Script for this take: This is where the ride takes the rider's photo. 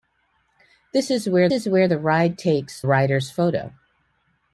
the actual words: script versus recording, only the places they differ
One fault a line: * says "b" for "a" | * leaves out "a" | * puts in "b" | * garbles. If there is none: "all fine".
* puts in "is where"
* leaves out "the"